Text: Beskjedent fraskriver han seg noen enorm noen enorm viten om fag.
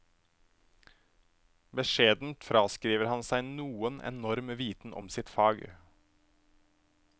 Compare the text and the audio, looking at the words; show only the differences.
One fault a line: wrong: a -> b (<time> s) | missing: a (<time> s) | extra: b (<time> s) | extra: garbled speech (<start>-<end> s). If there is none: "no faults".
missing: noen enorm (4.5 s)
extra: sitt (5.2 s)